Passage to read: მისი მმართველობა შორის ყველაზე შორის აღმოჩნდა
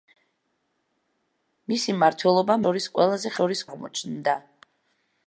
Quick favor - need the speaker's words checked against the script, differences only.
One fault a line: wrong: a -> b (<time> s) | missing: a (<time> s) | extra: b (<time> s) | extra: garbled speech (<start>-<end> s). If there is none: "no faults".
no faults